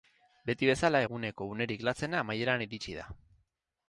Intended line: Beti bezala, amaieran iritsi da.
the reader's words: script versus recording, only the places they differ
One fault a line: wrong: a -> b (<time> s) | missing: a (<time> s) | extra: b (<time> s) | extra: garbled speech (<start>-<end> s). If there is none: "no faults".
extra: eguneko unerik latzena (1.0 s)